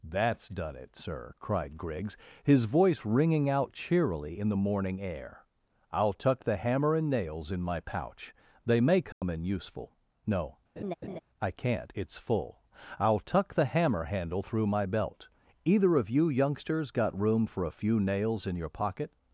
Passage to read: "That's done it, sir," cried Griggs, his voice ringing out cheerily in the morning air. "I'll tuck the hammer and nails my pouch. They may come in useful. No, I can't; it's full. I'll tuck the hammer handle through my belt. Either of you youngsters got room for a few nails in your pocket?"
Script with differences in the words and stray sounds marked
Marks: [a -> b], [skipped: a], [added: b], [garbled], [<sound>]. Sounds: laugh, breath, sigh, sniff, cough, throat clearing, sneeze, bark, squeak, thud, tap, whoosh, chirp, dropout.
"That's done it, sir," cried Griggs, his voice ringing out cheerily in the morning air. "I'll tuck the hammer and nails [added: in] my pouch. They may come [dropout] in useful. No, [laugh] I can't; it's full. I'll tuck the hammer handle through my belt. Either of you youngsters got room for a few nails in your pocket?"